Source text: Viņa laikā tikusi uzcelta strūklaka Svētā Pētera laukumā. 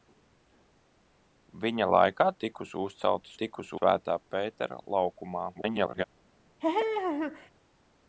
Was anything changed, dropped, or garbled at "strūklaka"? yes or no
yes